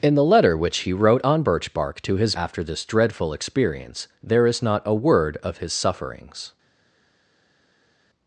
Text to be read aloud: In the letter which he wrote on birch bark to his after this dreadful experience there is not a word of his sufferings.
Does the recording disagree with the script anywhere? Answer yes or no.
no